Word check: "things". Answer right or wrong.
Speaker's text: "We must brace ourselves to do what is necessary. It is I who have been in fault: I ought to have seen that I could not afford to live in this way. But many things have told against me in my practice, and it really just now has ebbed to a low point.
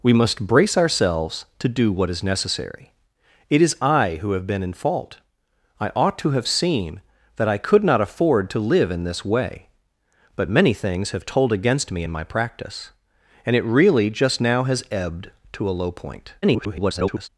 right